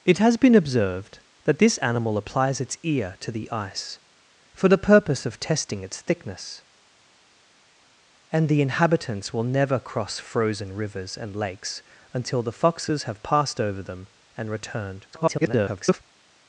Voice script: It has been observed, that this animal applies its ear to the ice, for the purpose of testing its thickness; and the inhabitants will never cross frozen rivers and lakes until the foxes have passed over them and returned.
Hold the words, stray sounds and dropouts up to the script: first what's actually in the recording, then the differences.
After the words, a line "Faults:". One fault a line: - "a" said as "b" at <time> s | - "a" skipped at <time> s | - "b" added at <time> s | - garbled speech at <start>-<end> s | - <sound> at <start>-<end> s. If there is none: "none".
It has been observed, that this animal applies its ear to the ice, for the purpose of testing its thickness; and the inhabitants will never cross frozen rivers and lakes until the foxes have passed over them and returned. [garbled]
Faults:
- garbled speech at 15.1-16.0 s